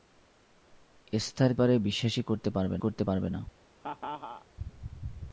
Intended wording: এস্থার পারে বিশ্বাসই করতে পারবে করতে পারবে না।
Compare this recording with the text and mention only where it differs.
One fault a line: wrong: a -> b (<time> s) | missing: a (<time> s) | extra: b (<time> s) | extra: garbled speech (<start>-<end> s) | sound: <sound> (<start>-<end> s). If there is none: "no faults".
sound: laugh (3.8-4.5 s)